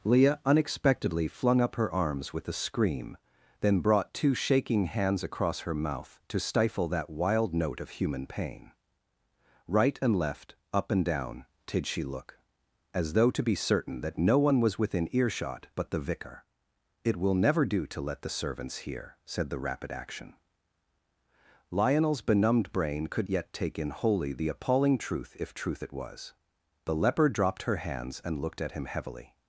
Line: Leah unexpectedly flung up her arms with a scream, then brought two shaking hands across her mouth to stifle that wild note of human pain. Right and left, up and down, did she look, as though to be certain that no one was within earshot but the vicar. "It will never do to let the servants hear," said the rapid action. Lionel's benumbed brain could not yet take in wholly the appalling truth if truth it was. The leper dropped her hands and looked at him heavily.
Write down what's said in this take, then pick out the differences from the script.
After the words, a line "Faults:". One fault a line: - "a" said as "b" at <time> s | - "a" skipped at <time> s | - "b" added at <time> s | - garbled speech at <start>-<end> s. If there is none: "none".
Leah unexpectedly flung up her arms with a scream, then brought two shaking hands across her mouth to stifle that wild note of human pain. Right and left, up and down, did she look, as though to be certain that no one was within earshot but the vicar. "It will never do to let the servants hear," said the rapid action. Lionel's benumbed brain could yet take in wholly the appalling truth if truth it was. The leper dropped her hands and looked at him heavily.
Faults:
- "not" skipped at 23.3 s